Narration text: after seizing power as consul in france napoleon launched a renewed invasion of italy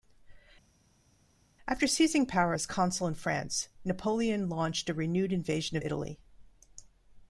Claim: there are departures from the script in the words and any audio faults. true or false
false